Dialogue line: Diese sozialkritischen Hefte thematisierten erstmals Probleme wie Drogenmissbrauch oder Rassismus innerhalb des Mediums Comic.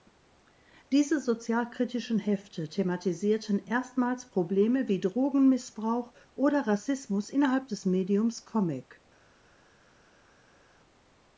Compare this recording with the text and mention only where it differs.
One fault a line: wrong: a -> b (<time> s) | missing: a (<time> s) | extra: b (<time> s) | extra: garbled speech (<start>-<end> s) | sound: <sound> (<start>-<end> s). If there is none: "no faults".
no faults